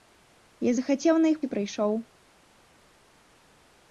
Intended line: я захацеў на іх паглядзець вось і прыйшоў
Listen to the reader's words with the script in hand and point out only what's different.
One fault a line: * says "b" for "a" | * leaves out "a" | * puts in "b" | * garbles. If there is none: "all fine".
* leaves out "паглядзець вось"